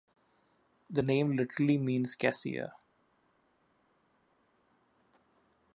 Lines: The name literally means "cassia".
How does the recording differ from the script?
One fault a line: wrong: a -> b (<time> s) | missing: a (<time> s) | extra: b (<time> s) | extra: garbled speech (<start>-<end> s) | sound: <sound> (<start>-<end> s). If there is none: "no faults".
no faults